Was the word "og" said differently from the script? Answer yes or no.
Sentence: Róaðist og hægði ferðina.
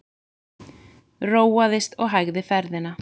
no